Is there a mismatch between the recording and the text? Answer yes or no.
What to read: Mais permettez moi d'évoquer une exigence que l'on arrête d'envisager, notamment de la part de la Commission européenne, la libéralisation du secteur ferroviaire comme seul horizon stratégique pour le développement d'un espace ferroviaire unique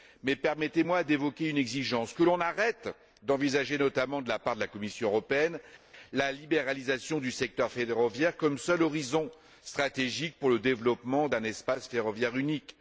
no